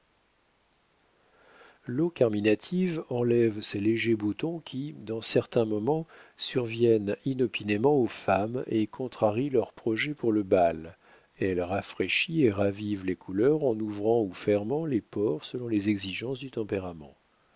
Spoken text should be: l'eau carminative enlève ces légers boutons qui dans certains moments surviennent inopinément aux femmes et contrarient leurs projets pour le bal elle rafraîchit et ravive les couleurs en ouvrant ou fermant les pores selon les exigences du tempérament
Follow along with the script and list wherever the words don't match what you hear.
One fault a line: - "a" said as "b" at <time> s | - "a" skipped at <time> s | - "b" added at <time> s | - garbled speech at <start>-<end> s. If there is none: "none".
none